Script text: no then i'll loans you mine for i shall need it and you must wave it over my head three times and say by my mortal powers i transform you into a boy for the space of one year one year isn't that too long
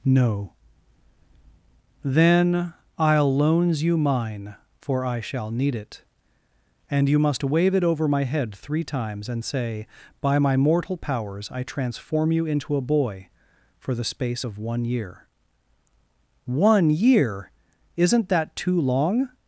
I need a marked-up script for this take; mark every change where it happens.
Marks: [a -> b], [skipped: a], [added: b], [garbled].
no then i'll loans you mine for i shall need it and you must wave it over my head three times and say by my mortal powers i transform you into a boy for the space of one year one year isn't that too long